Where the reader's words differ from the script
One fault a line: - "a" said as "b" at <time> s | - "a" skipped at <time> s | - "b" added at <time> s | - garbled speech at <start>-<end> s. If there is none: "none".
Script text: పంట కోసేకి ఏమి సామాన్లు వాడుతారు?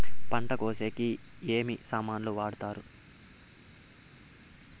none